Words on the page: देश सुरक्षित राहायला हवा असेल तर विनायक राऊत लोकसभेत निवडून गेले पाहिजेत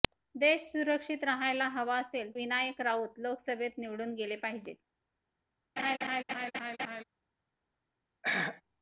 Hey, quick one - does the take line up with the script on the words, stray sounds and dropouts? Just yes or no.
no